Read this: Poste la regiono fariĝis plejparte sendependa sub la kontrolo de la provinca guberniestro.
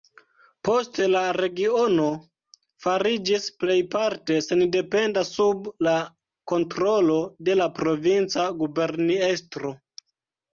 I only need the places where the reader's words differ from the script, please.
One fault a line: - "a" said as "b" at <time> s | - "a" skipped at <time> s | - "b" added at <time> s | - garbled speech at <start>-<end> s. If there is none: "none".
none